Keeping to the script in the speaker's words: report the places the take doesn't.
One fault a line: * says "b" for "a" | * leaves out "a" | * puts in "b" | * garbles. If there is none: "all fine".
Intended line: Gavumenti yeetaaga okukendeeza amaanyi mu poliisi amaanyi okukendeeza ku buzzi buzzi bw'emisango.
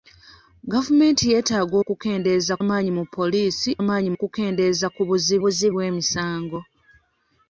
all fine